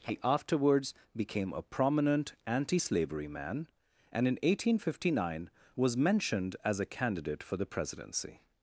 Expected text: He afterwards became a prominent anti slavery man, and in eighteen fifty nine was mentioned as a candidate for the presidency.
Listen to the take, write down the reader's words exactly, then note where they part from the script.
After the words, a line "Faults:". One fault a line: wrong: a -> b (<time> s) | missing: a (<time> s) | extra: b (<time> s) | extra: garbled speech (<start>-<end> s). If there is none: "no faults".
He afterwards became a prominent anti slavery man, and in eighteen fifty nine was mentioned as a candidate for the presidency.
Faults:
no faults